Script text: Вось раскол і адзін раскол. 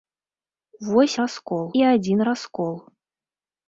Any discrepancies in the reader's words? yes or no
no